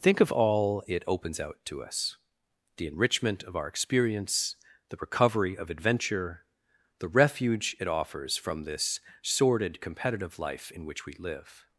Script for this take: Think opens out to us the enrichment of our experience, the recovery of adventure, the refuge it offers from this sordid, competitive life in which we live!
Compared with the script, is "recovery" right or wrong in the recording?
right